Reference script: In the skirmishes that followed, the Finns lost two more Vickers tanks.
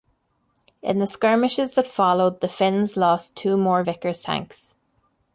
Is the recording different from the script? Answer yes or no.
no